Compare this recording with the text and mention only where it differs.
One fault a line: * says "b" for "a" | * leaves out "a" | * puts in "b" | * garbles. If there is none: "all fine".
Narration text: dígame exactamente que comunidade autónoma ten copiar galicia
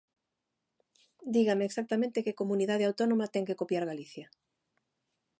* puts in "que"